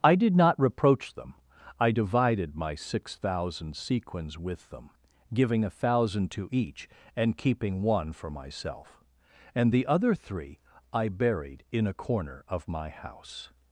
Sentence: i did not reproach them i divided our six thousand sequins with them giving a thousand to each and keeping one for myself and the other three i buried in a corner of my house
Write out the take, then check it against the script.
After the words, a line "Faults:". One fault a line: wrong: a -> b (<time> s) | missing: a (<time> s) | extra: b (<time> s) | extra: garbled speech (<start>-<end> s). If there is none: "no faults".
i did not reproach them i divided my six thousand sequins with them giving a thousand to each and keeping one for myself and the other three i buried in a corner of my house
Faults:
wrong: our -> my (2.5 s)